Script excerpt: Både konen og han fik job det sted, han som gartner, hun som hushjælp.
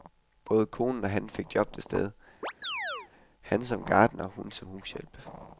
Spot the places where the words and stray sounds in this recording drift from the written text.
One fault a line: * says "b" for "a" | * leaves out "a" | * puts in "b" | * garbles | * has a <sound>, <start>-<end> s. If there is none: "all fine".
* has a chirp, 2.4-3.1 s